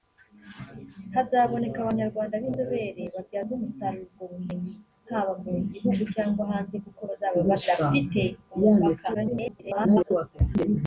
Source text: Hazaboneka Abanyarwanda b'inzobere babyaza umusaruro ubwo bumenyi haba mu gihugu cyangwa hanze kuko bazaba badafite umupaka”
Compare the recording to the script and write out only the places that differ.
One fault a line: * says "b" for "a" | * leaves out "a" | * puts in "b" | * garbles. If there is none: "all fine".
* garbles